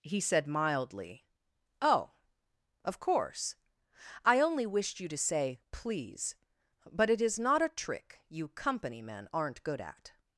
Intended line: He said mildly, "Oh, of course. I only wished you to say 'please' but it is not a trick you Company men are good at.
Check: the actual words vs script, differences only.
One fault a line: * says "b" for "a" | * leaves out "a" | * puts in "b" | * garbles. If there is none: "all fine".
* says "aren't" for "are"